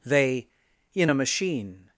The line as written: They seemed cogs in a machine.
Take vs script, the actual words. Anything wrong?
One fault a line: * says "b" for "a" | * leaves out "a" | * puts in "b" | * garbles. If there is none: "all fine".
* leaves out "seemed cogs"